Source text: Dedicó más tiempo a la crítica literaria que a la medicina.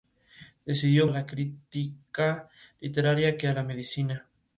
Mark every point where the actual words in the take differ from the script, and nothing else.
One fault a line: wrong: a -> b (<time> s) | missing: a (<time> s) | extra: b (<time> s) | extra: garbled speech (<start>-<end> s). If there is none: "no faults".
missing: más tiempo (1.1 s)